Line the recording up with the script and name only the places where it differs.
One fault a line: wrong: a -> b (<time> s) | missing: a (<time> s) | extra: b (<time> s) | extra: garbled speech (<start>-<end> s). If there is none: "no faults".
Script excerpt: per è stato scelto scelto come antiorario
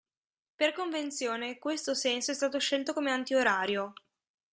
extra: convenzione questo senso (0.7 s)
missing: scelto (2.9 s)